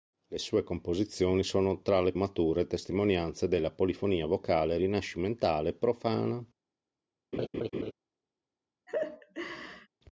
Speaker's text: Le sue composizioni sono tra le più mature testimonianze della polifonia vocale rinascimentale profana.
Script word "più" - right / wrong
wrong